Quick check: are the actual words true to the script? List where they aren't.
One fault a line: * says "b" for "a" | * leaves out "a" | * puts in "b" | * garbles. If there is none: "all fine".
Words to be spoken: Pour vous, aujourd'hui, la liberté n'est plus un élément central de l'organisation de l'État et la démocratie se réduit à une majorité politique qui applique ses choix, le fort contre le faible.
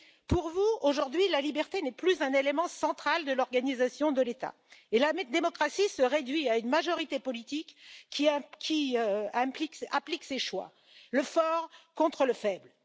all fine